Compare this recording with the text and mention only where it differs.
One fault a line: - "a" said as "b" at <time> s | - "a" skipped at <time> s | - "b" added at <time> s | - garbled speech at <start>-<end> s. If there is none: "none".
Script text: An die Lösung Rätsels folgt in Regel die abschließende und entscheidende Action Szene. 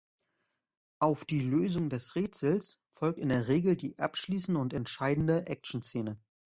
- "An" said as "Auf" at 1.0 s
- "des" added at 1.9 s
- "der" added at 3.3 s